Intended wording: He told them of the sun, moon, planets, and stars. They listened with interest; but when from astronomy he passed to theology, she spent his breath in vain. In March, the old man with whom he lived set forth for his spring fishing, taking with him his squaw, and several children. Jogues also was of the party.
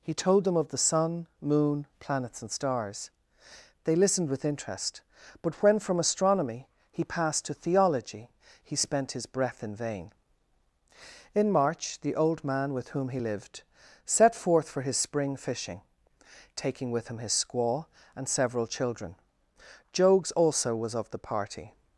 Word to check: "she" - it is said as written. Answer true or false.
false